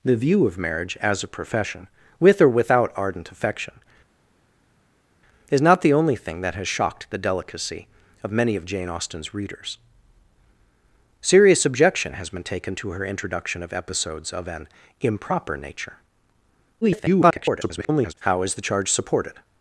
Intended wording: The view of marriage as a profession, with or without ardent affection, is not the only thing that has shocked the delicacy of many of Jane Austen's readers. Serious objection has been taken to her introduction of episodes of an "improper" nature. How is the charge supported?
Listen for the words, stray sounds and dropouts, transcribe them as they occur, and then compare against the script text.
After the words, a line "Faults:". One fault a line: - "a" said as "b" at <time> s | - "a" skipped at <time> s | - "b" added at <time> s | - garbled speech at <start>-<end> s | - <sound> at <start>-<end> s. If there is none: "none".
The view of marriage as a profession, with or without ardent affection, is not the only thing that has shocked the delicacy of many of Jane Austen's readers. Serious objection has been taken to her introduction of episodes of an "improper" nature. [garbled] How is the charge supported?
Faults:
- garbled speech at 16.8-18.1 s